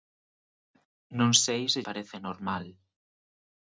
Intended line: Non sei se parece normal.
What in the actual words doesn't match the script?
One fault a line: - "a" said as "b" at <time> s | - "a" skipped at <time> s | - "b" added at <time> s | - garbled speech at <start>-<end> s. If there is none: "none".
none